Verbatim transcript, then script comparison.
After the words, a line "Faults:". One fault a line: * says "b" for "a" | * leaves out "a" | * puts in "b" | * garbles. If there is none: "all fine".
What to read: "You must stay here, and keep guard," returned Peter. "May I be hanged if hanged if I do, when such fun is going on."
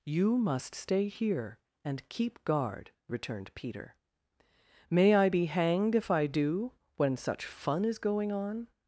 "You must stay here, and keep guard," returned Peter. "May I be hanged if I do, when such fun is going on."
Faults:
* leaves out "hanged if"